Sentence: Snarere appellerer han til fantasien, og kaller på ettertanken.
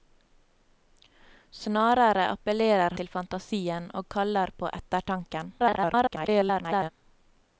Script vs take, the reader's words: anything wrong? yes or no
yes